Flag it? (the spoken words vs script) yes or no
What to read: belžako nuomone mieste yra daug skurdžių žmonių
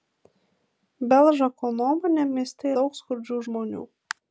yes